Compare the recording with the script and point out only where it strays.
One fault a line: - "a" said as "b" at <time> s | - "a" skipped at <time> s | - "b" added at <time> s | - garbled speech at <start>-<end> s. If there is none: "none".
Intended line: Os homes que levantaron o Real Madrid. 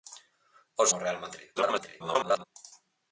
- "homes que levantaron" skipped at 0.9 s
- garbled speech at 1.6-2.4 s